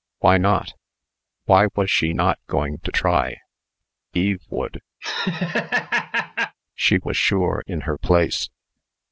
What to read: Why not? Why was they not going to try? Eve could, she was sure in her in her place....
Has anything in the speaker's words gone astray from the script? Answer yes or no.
yes